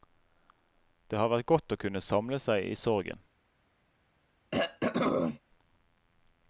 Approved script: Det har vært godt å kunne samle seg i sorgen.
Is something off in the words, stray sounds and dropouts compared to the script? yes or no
yes